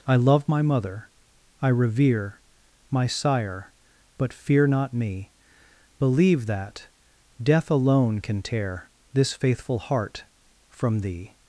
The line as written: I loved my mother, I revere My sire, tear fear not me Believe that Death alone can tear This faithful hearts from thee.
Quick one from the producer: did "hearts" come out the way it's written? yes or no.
no